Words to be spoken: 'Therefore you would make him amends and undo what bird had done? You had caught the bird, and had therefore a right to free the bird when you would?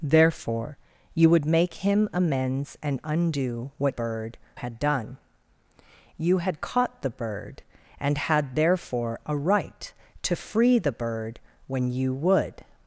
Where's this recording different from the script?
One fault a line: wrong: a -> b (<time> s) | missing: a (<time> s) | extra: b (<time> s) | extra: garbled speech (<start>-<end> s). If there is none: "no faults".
no faults